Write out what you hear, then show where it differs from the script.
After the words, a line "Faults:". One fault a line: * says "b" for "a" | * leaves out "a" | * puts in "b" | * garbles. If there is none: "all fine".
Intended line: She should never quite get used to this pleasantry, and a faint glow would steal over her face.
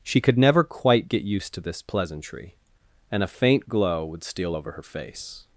She could never quite get used to this pleasantry, and a faint glow would steal over her face.
Faults:
* says "could" for "should"